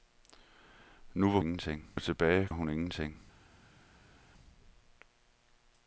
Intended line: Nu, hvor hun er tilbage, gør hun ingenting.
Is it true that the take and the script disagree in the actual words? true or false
true